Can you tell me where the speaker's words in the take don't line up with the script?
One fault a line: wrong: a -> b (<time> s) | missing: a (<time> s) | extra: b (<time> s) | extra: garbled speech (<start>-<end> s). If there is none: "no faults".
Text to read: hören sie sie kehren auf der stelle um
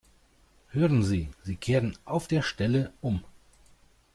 no faults